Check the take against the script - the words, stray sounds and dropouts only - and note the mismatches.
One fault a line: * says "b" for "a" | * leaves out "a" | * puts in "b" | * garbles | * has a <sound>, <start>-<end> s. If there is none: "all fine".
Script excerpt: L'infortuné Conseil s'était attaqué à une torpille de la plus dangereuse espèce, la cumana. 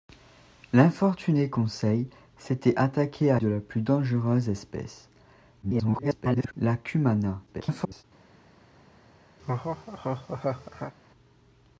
* leaves out "une torpille"
* garbles
* garbles
* has a laugh, 9.4-10.9 s